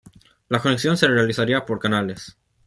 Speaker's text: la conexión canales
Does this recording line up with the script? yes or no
no